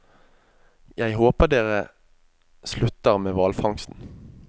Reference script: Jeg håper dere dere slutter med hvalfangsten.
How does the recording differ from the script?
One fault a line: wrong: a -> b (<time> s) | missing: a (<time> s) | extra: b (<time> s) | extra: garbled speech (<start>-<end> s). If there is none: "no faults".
missing: dere (1.8 s)